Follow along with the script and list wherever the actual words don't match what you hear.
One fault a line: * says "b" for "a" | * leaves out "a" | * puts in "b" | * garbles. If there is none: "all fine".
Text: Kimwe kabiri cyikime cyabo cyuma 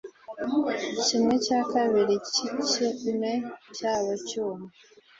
* puts in "cya"